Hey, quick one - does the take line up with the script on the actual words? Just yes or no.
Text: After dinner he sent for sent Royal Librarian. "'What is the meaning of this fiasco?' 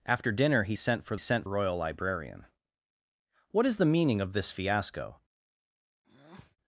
yes